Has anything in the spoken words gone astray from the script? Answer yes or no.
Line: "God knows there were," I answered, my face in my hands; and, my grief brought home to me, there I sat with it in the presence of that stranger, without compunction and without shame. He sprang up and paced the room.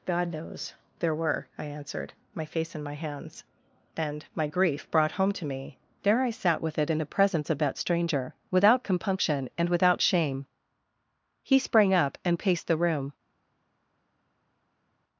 no